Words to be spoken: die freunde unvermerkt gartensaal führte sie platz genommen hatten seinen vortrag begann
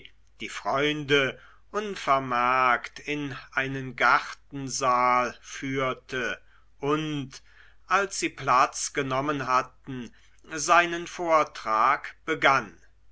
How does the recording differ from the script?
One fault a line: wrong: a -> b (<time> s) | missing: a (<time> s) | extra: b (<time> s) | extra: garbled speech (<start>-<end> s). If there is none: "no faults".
extra: in einen (3.0 s)
extra: und als (6.8 s)